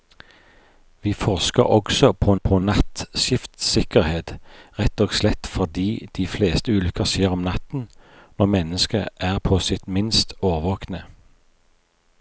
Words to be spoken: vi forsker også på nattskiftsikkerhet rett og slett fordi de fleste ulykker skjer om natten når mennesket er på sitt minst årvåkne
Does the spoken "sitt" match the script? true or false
true